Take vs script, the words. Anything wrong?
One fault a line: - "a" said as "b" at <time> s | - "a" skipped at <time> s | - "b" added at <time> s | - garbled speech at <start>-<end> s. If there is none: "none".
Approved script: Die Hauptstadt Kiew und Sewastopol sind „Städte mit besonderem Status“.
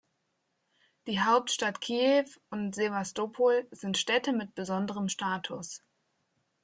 none